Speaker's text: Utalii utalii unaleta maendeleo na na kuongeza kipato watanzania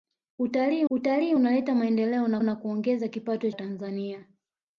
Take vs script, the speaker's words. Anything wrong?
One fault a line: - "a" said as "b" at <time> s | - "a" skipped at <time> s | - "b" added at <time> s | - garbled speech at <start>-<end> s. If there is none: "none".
none